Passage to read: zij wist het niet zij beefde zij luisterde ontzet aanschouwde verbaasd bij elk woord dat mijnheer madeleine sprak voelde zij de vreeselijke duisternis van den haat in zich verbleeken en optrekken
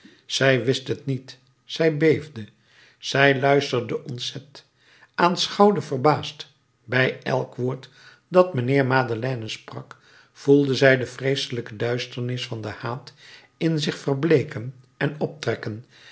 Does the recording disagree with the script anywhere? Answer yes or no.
no